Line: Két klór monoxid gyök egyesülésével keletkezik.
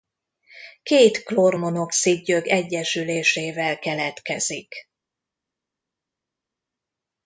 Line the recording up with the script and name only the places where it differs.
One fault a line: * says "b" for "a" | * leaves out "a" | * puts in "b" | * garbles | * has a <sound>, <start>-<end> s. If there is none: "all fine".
all fine